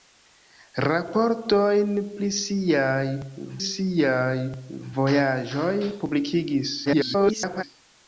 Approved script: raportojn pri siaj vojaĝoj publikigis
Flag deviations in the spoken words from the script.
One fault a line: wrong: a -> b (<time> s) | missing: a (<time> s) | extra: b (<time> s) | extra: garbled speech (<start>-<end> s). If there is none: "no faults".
extra: siaj (3.7 s)
extra: garbled speech (6.9-7.6 s)